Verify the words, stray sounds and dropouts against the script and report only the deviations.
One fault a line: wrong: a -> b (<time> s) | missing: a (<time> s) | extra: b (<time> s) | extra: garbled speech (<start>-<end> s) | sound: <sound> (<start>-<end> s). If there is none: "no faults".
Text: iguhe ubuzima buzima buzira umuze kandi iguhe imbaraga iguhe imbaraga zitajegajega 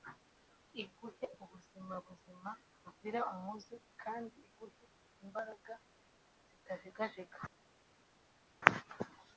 missing: iguhe imbaraga (5.7 s)